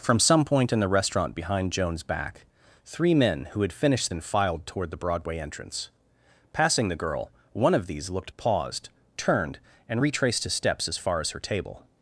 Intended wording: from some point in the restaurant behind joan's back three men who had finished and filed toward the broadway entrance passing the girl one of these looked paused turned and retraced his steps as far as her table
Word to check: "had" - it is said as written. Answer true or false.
true